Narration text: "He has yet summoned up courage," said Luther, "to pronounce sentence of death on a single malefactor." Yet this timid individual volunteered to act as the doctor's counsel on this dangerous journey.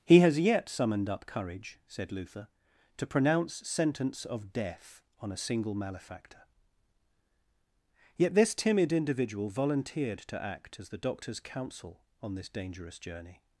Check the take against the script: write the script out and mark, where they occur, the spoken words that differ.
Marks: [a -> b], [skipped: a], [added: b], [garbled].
"He has yet summoned up courage," said Luther, "to pronounce sentence of death on a single malefactor." Yet this timid individual volunteered to act as the doctor's counsel on this dangerous journey.